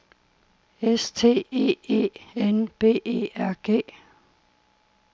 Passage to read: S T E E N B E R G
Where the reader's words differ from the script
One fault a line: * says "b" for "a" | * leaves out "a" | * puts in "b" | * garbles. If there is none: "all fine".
all fine